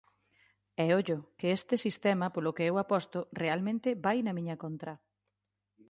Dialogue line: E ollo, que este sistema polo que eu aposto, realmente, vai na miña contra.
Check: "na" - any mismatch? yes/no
no